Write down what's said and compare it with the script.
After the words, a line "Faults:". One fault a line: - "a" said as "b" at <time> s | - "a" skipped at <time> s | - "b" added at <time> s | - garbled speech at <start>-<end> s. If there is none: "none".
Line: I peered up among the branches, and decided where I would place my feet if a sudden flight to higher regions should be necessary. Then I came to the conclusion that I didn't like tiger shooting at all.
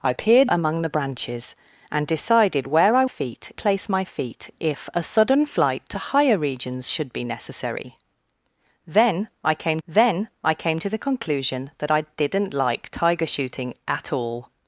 I peered among the branches, and decided where I feet place my feet if a sudden flight to higher regions should be necessary. Then I came then I came to the conclusion that I didn't like tiger shooting at all.
Faults:
- "up" skipped at 0.5 s
- "would" said as "feet" at 3.1 s
- "then I came" added at 9.9 s